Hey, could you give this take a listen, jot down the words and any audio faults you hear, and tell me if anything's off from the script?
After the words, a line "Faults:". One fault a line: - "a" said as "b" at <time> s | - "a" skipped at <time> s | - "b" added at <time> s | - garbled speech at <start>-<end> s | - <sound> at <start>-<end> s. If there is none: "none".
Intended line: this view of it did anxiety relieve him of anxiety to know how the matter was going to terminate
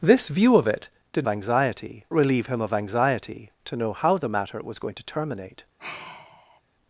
this view of it did anxiety relieve him of anxiety to know how the matter was going to terminate
Faults:
- sigh at 5.8-6.6 s